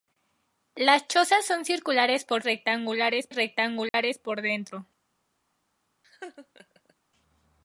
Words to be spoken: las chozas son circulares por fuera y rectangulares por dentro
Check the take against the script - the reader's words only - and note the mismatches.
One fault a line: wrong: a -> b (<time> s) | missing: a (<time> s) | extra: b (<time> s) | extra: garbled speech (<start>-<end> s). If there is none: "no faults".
wrong: fuera -> rectangulares (2.4 s)